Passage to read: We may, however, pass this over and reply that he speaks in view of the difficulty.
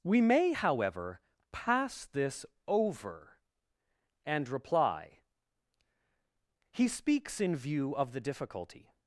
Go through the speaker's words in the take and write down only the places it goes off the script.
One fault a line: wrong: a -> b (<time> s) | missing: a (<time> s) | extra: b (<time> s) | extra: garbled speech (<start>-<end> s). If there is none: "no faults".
missing: that (5.2 s)